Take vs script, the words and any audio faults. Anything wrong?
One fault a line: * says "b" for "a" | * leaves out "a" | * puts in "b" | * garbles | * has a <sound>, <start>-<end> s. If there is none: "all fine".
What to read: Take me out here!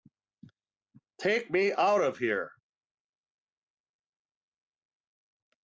* puts in "of"